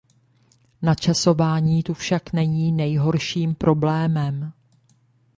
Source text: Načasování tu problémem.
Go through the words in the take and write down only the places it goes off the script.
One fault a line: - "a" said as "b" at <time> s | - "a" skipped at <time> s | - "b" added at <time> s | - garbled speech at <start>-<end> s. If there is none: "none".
- "však není nejhorším" added at 1.9 s